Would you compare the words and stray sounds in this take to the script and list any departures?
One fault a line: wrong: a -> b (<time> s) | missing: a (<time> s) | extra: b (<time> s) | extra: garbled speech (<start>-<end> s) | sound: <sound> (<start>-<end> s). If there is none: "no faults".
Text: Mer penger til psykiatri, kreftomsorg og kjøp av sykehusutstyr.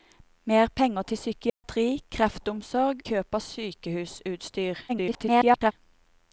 sound: dropout (1.5-1.6 s)
missing: og (3.0 s)
extra: garbled speech (4.9-5.7 s)